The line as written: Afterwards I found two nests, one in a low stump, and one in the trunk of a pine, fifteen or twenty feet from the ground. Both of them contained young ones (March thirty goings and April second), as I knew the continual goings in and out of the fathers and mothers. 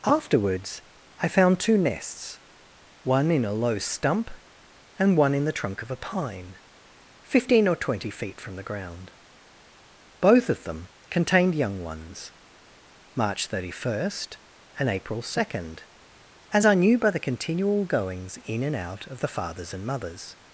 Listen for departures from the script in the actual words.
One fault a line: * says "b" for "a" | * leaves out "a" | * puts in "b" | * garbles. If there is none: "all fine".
* says "first" for "goings"
* puts in "by"